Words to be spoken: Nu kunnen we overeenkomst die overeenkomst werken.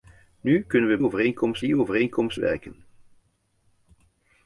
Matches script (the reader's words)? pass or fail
pass